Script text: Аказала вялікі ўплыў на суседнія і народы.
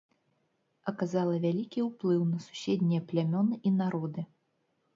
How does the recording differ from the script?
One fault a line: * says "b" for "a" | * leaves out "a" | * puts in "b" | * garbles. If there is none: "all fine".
* puts in "плямёны"